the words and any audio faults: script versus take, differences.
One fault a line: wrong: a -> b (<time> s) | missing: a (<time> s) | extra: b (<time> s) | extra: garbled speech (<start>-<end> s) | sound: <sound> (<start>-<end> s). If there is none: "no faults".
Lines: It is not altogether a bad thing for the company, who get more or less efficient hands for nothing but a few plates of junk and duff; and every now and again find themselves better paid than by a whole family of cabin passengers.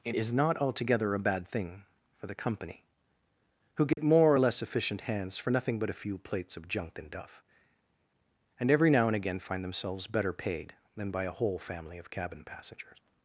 sound: dropout (3.9-4.0 s)